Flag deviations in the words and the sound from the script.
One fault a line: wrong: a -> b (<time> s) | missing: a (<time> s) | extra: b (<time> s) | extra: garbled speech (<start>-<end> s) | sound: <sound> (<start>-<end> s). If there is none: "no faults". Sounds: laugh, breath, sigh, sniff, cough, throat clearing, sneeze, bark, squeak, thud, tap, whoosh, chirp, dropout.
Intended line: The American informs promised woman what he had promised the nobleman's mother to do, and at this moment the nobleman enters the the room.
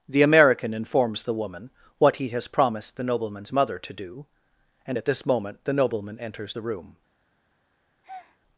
wrong: promised -> the (1.2 s)
wrong: had -> has (2.3 s)
missing: the (6.6 s)
sound: breath (8.0-8.4 s)